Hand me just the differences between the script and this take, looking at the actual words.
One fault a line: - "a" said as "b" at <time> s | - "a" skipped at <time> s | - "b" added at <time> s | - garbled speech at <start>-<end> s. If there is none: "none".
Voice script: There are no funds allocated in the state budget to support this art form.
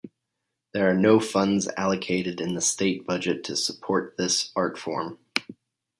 none